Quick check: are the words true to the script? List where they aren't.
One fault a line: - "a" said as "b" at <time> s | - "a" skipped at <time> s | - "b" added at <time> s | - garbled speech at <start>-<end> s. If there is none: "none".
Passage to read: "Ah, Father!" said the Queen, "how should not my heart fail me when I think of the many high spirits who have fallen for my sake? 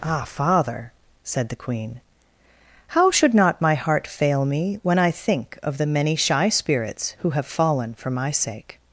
- "high" said as "shy" at 6.2 s